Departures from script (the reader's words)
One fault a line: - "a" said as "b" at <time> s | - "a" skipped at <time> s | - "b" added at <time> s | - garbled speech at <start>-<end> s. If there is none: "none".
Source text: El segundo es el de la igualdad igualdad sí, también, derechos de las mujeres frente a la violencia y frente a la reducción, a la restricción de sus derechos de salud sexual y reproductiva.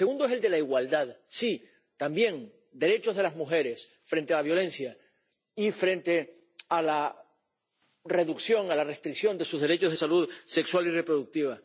- "igualdad" skipped at 1.2 s